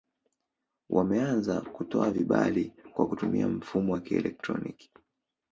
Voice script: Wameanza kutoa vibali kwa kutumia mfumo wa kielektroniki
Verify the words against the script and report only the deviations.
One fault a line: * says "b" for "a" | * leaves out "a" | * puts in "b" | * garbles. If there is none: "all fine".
all fine